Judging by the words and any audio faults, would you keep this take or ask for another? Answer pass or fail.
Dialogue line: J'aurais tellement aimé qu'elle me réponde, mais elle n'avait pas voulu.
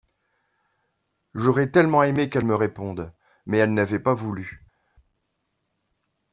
pass